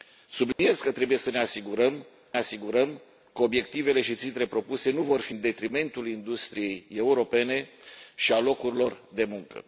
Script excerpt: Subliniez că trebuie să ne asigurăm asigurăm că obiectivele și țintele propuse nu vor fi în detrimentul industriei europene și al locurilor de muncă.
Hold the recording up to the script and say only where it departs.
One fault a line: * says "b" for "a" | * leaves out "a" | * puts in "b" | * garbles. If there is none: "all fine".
all fine